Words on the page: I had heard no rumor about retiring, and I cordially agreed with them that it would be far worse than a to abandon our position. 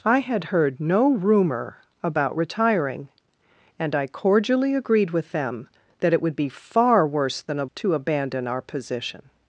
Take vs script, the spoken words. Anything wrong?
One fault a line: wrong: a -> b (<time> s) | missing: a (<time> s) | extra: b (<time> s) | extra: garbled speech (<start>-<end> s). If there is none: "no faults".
no faults